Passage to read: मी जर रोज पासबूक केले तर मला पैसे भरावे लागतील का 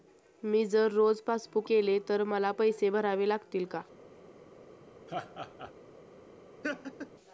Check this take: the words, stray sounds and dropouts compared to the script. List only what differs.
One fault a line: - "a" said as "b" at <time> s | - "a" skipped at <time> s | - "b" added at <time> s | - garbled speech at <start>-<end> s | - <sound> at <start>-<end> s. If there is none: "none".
- laugh at 5.1-5.7 s
- laugh at 6.6-7.1 s